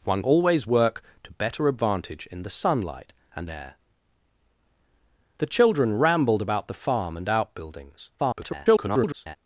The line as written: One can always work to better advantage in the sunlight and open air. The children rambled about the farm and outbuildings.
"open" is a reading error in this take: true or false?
true